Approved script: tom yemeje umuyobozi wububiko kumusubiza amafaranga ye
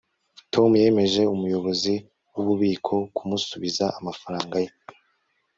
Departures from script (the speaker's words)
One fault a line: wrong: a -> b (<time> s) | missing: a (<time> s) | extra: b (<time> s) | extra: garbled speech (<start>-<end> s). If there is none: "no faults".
no faults